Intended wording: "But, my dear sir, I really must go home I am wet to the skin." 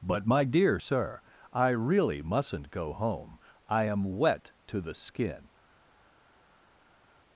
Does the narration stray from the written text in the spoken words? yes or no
yes